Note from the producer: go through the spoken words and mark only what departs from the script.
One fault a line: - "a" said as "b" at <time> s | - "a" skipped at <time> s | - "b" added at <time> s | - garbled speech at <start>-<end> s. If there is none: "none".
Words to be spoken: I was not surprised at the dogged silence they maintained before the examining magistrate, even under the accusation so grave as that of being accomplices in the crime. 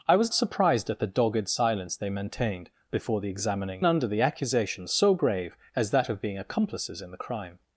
- "not" skipped at 0.3 s
- "magistrate even" skipped at 3.8 s